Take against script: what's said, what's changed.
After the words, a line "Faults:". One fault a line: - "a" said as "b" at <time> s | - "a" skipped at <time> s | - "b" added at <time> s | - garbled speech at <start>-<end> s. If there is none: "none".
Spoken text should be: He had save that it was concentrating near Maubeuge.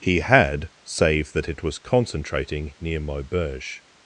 He had save that it was concentrating near Maubeuge.
Faults:
none